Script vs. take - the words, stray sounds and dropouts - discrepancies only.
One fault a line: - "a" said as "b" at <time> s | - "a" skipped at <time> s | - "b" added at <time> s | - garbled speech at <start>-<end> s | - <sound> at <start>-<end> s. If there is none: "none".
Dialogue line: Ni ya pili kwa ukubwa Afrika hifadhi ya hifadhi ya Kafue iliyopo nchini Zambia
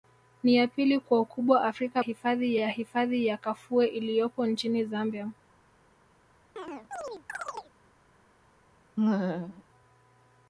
- chirp at 6.6-7.7 s
- laugh at 9.0-9.6 s